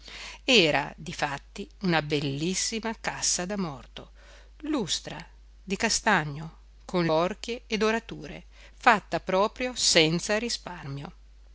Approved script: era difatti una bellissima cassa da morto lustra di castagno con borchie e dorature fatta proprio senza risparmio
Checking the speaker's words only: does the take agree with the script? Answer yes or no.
yes